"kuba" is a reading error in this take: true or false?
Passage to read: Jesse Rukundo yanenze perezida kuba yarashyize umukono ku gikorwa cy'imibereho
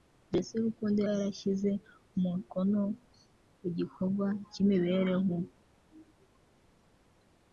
true